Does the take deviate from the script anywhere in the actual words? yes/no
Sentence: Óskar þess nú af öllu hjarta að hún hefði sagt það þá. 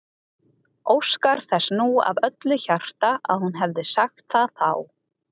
no